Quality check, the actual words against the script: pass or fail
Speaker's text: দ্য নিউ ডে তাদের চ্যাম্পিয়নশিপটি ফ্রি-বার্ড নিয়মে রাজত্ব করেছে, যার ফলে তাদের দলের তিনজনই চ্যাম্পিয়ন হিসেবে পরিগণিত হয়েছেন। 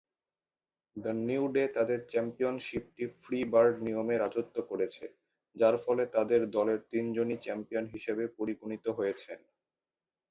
pass